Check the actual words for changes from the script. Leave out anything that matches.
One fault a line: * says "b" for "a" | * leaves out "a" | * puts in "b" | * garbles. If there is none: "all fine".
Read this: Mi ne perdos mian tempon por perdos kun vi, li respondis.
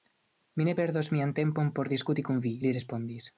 * says "diskuti" for "perdos"